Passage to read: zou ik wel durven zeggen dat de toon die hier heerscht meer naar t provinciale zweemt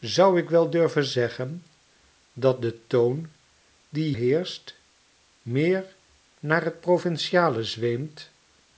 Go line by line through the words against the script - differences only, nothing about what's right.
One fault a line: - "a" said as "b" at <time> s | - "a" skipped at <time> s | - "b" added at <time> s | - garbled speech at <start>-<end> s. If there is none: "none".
- "hier" skipped at 4.1 s